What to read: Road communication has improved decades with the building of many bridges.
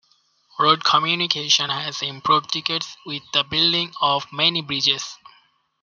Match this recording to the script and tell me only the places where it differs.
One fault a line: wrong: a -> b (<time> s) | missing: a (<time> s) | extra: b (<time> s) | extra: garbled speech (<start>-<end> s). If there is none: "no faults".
no faults